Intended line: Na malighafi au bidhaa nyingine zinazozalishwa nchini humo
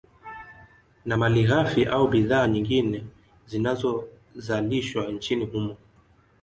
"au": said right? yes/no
yes